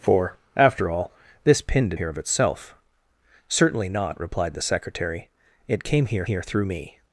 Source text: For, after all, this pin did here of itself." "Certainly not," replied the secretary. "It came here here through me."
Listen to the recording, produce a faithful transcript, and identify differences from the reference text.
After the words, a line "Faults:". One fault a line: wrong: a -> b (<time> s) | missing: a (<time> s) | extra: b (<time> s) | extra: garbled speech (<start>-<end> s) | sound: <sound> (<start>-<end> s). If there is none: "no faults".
For, after all, this pin did here of itself." "Certainly not," replied the secretary. "It came here here through me."
Faults:
no faults